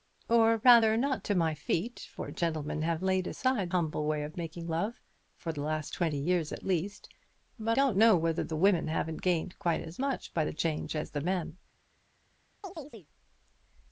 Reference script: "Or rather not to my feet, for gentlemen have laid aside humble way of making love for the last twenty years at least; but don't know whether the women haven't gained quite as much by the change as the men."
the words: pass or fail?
pass